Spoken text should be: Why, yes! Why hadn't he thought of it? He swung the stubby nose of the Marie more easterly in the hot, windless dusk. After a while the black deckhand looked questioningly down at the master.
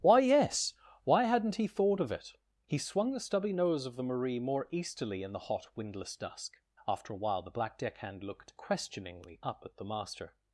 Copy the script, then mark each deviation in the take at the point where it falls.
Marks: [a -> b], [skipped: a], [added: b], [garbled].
Why, yes! Why hadn't he thought of it? He swung the stubby nose of the Marie more easterly in the hot, windless dusk. After a while the black deckhand looked questioningly [down -> up] at the master.